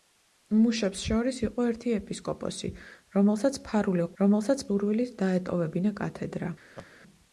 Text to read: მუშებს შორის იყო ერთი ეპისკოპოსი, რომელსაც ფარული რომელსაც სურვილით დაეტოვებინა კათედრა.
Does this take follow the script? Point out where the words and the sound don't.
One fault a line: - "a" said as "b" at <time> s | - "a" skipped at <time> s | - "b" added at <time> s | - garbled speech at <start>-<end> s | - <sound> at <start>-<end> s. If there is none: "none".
- laugh at 6.8-6.9 s